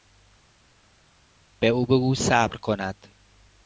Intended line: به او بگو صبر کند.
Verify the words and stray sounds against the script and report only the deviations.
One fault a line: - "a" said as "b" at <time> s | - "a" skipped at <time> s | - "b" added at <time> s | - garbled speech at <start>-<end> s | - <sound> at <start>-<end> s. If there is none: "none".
none